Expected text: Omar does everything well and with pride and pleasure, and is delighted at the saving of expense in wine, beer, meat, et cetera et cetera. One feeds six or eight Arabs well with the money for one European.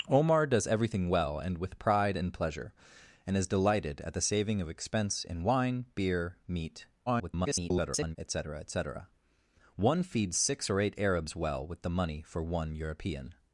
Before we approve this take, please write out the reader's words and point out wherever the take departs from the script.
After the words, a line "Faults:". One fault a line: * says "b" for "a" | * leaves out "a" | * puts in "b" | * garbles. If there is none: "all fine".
Omar does everything well and with pride and pleasure, and is delighted at the saving of expense in wine, beer, meat, [garbled] et cetera et cetera. One feeds six or eight Arabs well with the money for one European.
Faults:
* garbles